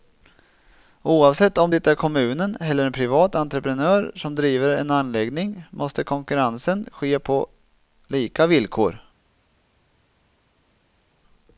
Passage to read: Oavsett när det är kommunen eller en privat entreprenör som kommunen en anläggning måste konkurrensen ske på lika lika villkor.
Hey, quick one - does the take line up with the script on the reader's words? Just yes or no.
no